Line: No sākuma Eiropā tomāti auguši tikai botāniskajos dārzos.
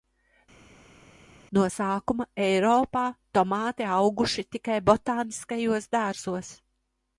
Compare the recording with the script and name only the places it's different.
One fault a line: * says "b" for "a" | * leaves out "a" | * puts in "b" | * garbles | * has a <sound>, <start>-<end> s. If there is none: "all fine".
all fine